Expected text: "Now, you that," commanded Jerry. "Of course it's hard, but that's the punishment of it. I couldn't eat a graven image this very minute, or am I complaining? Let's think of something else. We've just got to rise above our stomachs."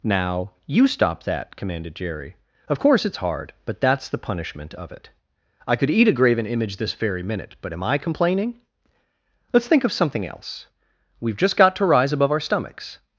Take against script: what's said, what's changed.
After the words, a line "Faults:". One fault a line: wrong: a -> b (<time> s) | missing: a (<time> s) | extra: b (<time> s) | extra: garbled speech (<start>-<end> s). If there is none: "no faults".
"Now, you stop that," commanded Jerry. "Of course it's hard, but that's the punishment of it. I could eat a graven image this very minute, but am I complaining? Let's think of something else. We've just got to rise above our stomachs."
Faults:
extra: stop (0.9 s)
wrong: couldn't -> could (5.8 s)
wrong: or -> but (7.6 s)